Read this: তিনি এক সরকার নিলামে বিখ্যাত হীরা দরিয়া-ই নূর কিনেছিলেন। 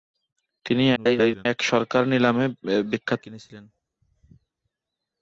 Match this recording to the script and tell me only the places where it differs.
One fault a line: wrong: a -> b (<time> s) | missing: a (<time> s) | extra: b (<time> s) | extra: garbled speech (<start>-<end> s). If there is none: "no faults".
extra: garbled speech (1.0-1.5 s)
missing: হীরা দরিয়া-ই নূর (3.2 s)